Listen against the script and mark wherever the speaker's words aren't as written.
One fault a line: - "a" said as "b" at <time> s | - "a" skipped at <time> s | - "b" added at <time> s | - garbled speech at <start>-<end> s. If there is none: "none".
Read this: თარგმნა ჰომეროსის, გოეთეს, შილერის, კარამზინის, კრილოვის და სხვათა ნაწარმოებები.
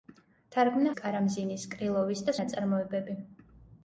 - "ჰომეროსის გოეთეს შილერის" skipped at 0.9 s
- "სხვათა" skipped at 2.4 s